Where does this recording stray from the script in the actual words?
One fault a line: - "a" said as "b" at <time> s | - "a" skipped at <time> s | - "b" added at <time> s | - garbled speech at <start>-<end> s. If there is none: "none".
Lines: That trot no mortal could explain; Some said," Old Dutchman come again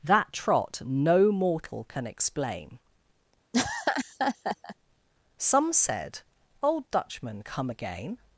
- "could" said as "can" at 1.9 s